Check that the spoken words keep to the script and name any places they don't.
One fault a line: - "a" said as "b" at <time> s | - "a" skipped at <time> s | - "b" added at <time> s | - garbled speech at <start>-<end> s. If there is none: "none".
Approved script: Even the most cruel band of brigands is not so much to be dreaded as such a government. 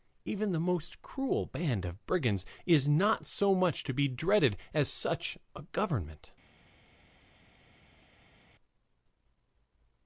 none